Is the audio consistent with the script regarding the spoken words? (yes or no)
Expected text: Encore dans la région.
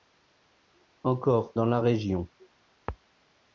yes